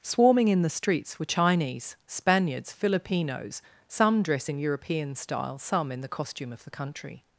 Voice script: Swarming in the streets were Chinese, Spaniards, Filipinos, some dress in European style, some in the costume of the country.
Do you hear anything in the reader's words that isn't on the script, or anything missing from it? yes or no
no